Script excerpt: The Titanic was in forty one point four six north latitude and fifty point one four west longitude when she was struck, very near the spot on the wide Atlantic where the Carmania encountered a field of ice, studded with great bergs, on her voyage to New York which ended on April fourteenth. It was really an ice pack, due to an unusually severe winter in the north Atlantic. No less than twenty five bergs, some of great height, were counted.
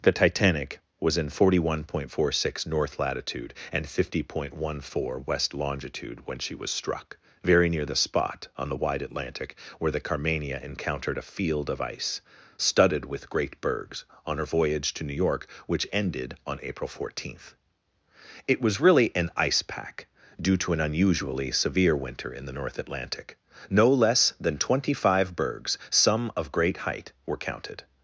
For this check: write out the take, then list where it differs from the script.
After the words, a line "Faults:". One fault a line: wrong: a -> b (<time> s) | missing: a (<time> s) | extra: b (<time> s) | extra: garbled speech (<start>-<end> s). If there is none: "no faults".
The Titanic was in forty one point four six north latitude and fifty point one four west longitude when she was struck, very near the spot on the wide Atlantic where the Carmania encountered a field of ice, studded with great bergs, on her voyage to New York which ended on April fourteenth. It was really an ice pack, due to an unusually severe winter in the north Atlantic. No less than twenty five bergs, some of great height, were counted.
Faults:
no faults